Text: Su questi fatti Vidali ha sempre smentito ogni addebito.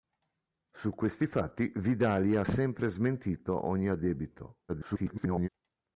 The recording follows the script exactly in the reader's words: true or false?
false